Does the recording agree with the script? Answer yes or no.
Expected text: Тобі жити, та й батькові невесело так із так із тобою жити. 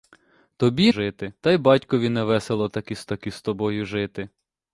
yes